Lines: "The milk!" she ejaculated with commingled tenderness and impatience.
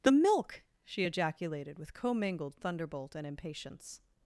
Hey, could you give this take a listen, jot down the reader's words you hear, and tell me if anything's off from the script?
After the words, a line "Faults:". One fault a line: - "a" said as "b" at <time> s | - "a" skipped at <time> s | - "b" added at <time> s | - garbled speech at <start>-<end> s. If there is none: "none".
"The milk!" she ejaculated with commingled thunderbolt and impatience.
Faults:
- "tenderness" said as "thunderbolt" at 2.6 s